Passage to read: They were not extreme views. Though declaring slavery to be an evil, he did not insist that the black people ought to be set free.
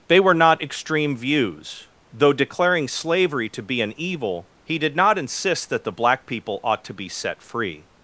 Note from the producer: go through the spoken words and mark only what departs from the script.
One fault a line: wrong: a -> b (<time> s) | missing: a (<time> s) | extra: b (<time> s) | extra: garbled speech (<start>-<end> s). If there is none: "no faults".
no faults